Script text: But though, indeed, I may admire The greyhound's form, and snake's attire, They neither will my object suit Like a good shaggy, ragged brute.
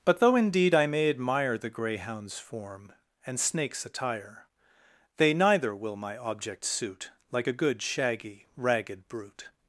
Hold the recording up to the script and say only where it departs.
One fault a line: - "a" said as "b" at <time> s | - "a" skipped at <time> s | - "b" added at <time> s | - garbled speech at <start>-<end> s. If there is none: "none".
none